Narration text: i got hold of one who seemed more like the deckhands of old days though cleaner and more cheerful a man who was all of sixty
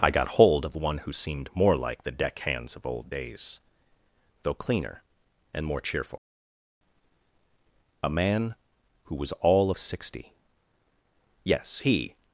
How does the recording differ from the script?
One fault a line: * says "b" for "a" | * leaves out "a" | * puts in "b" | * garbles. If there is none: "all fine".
* puts in "yes he"